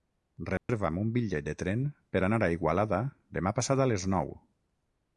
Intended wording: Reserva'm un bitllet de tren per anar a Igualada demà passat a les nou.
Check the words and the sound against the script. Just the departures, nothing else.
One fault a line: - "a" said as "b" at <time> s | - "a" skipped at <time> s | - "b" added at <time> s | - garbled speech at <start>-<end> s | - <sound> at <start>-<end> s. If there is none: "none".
- dropout at 0.6-0.7 s